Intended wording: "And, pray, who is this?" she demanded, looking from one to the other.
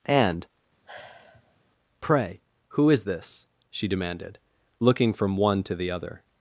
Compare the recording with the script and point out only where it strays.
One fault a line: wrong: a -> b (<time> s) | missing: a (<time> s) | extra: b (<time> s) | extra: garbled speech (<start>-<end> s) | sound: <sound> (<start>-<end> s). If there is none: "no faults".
sound: sigh (0.9-1.6 s)